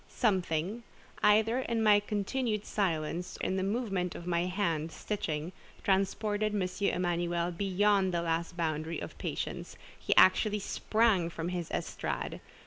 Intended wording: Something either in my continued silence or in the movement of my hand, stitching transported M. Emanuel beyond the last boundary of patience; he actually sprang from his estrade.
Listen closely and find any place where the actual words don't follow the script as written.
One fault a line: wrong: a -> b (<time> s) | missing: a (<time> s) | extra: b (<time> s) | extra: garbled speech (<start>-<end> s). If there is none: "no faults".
missing: or (3.4 s)